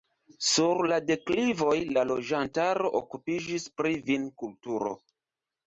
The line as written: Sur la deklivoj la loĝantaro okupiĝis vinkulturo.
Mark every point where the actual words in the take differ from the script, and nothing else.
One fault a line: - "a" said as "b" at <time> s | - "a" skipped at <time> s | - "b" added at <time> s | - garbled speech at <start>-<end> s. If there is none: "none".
- "pri" added at 3.8 s